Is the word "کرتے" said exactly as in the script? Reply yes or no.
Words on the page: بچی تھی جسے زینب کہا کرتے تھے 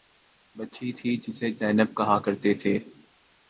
yes